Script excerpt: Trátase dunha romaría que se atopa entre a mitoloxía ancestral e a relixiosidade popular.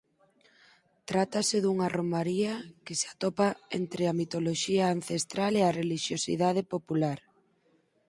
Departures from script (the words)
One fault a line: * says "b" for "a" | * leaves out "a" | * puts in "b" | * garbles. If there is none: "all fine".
all fine